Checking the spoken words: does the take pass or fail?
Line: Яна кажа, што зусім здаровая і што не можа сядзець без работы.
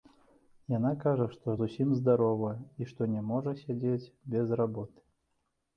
pass